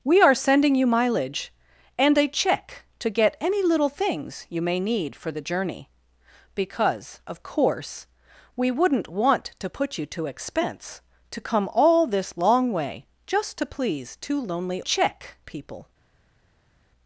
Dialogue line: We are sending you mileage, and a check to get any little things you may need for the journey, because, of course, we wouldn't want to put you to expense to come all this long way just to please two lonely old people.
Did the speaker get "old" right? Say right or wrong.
wrong